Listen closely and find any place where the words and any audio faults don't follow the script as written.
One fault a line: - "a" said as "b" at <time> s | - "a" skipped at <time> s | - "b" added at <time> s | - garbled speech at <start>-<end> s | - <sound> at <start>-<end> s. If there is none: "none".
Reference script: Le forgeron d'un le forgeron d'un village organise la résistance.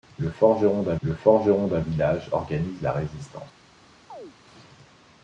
- chirp at 4.1-4.4 s